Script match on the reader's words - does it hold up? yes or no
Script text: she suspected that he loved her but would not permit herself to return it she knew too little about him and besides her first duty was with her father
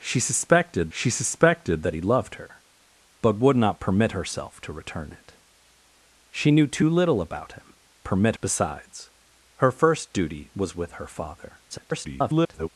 no